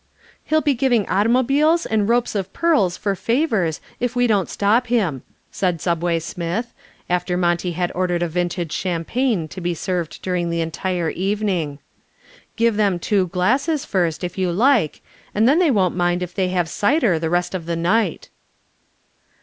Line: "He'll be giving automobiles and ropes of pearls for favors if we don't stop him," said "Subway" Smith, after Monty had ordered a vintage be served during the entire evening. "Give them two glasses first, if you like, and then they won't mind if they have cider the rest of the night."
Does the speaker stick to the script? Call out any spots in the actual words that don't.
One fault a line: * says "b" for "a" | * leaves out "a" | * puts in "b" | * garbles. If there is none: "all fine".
* puts in "champagne to"